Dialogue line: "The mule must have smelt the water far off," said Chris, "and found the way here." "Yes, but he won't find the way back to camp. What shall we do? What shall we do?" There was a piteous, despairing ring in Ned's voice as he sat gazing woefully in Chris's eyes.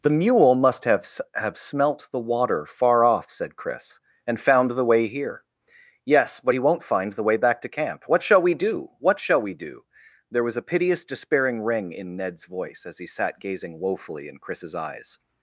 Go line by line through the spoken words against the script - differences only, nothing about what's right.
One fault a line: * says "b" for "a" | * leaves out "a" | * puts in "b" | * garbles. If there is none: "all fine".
* puts in "have"